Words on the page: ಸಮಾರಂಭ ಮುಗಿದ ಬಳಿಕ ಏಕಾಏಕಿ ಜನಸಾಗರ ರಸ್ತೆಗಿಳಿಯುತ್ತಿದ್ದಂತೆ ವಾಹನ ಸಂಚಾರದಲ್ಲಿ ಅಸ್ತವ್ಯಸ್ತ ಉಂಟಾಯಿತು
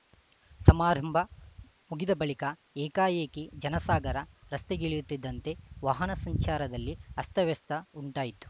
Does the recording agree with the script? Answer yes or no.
yes